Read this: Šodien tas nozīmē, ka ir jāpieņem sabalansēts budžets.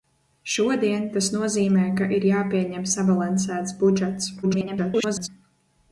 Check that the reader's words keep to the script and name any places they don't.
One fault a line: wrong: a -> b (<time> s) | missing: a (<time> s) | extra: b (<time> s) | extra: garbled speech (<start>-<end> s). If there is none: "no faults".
extra: garbled speech (4.4-5.3 s)